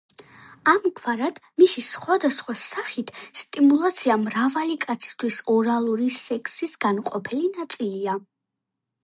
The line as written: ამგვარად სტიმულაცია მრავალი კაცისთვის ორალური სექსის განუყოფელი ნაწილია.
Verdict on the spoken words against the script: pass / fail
fail